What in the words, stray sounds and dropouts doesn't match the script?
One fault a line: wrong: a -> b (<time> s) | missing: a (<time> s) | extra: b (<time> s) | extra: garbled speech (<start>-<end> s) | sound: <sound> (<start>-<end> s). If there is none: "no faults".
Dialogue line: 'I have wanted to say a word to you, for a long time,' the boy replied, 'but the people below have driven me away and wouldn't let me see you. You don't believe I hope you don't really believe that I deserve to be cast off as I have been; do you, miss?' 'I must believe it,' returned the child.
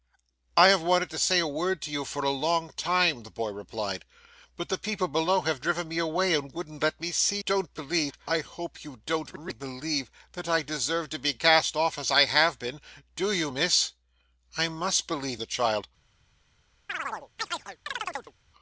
missing: you You (7.4 s)
missing: it returned (15.4 s)
sound: chirp (16.9-18.3 s)